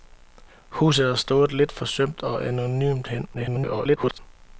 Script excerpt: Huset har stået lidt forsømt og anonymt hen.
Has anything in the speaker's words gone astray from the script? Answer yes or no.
yes